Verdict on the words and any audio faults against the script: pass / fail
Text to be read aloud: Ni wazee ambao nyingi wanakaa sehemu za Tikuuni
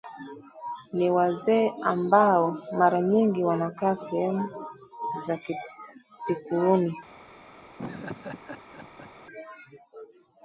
fail